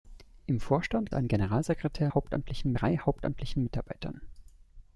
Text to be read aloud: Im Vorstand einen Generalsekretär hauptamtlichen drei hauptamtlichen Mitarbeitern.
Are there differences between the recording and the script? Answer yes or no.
no